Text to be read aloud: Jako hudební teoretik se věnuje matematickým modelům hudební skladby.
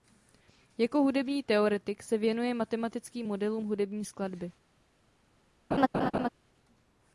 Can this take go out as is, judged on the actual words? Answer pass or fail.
pass